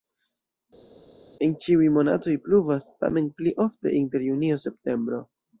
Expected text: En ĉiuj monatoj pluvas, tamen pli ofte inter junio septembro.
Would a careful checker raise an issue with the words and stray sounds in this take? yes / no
no